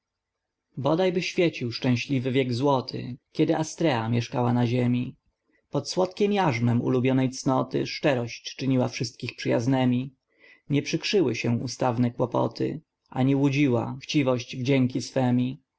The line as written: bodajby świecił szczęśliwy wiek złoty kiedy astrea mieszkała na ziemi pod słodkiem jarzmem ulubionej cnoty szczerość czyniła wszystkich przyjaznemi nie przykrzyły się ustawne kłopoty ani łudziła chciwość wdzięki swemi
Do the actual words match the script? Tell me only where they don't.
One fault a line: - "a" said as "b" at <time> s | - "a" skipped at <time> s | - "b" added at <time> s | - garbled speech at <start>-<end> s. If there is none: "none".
none